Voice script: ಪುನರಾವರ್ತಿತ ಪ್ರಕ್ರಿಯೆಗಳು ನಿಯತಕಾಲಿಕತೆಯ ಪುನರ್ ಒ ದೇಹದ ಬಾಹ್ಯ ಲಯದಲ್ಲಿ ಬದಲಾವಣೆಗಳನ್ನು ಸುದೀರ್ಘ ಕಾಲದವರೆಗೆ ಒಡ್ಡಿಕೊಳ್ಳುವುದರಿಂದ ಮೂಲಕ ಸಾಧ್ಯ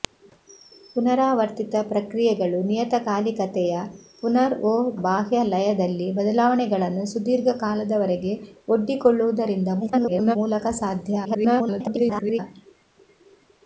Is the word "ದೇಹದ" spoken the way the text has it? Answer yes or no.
no